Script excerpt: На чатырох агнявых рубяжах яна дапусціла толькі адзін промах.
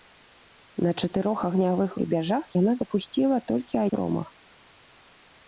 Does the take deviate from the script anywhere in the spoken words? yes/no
yes